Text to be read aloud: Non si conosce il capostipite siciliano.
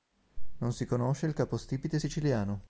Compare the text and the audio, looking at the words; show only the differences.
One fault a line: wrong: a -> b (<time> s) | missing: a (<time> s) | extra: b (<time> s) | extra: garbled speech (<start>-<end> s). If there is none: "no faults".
no faults